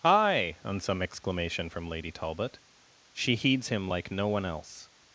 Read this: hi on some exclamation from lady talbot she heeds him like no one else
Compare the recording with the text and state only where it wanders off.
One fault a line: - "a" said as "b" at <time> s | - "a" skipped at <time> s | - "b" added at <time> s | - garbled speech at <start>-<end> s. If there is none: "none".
none